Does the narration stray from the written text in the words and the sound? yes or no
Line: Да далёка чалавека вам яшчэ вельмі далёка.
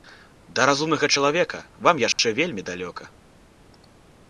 yes